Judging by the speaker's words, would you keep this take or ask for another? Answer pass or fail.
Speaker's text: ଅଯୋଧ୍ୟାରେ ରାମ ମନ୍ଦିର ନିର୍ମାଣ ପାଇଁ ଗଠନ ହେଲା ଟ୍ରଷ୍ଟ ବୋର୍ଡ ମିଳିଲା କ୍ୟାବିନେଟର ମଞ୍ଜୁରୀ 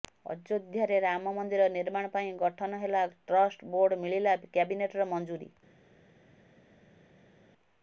pass